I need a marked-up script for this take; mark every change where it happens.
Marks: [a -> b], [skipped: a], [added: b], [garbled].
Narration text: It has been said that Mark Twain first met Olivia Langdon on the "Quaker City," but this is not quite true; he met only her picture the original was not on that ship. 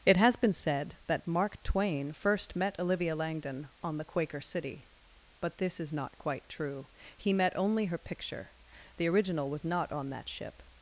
It has been said that Mark Twain first met Olivia Langdon on the "Quaker City," but this is not quite true; he met only her picture the original was not on that ship.